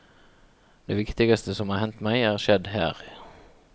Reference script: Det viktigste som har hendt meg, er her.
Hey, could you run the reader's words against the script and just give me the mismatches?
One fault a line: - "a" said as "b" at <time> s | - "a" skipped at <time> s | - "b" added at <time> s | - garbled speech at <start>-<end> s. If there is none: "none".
- "skjedd" added at 2.4 s